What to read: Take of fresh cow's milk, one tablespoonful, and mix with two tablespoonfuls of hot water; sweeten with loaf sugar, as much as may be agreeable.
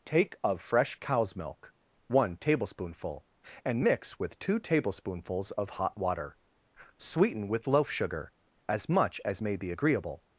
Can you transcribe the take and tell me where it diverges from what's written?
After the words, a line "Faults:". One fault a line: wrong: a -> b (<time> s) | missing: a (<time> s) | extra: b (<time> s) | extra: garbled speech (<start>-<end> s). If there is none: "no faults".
Take of fresh cow's milk, one tablespoonful, and mix with two tablespoonfuls of hot water; sweeten with loaf sugar, as much as may be agreeable.
Faults:
no faults